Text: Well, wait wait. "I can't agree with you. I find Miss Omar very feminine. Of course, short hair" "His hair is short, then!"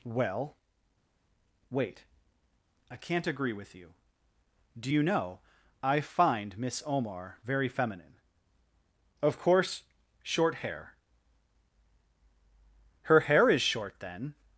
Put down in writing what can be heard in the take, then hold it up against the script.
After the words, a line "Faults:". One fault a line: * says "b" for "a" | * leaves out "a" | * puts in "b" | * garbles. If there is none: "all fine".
Well, wait. "I can't agree with you. Do you know, I find Miss Omar very feminine. Of course, short hair" "Her hair is short, then!"
Faults:
* leaves out "wait"
* puts in "Do you know"
* says "Her" for "His"